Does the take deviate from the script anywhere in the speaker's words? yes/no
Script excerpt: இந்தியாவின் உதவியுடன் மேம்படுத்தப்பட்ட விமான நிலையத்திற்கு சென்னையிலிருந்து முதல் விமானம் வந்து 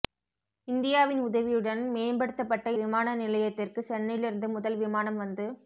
no